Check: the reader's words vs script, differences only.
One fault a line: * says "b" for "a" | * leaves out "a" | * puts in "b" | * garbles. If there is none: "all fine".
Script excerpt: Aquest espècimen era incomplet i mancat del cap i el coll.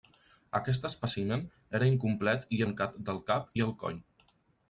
all fine